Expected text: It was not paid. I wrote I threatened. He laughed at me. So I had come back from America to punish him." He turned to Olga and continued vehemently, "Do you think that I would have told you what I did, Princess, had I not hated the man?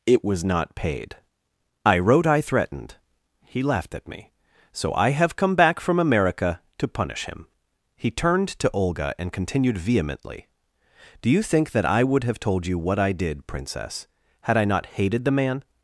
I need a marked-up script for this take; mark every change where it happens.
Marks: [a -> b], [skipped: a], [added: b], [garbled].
It was not paid. I wrote I threatened. He laughed at me. So I [had -> have] come back from America to punish him." He turned to Olga and continued vehemently, "Do you think that I would have told you what I did, Princess, had I not hated the man?